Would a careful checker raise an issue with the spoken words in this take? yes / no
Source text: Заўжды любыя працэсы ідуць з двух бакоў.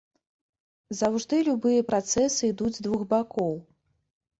no